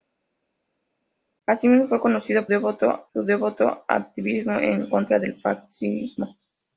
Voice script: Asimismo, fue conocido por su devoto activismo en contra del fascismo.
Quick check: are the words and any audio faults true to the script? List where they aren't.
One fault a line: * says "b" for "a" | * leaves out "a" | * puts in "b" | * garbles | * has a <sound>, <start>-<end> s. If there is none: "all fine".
* says "devoto" for "por"